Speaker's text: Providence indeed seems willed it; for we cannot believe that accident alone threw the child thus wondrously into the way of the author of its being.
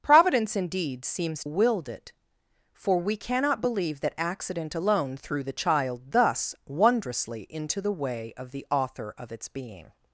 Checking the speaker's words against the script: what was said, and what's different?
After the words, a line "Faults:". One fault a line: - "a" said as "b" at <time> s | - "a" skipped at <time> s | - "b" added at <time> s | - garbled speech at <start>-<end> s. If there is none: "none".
Providence indeed seems willed it; for we cannot believe that accident alone threw the child thus wondrously into the way of the author of its being.
Faults:
none